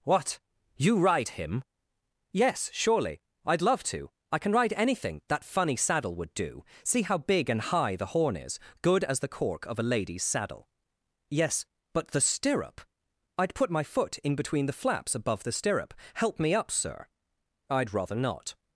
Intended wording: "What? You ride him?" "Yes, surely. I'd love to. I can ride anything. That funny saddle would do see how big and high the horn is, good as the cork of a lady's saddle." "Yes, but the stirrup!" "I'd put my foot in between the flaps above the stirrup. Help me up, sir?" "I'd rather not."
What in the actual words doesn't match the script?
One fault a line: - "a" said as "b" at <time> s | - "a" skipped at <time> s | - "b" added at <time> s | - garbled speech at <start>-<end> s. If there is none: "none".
none